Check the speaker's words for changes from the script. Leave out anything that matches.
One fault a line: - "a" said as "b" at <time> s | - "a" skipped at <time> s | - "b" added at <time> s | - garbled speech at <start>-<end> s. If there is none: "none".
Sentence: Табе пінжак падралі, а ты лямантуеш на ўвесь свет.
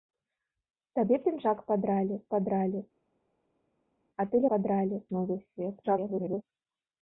- "падралі" added at 2.3 s
- "лямантуеш" said as "падралі" at 4.5 s
- garbled speech at 5.8-6.4 s